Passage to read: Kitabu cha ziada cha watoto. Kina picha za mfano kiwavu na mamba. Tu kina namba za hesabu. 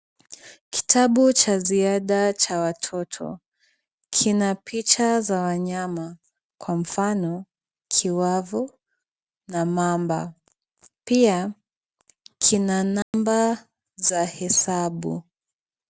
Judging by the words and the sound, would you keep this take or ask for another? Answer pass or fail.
fail